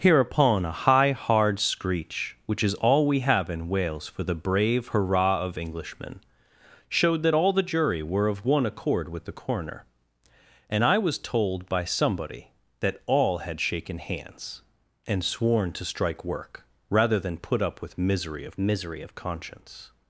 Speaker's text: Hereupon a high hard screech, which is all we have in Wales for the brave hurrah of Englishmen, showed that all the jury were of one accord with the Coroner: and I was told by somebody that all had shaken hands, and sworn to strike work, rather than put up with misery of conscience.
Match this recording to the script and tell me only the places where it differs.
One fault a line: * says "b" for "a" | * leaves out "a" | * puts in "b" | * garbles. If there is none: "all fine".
* puts in "misery of"